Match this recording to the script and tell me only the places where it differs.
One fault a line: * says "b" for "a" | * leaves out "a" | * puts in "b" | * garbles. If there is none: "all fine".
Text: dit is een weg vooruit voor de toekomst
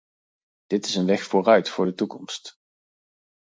all fine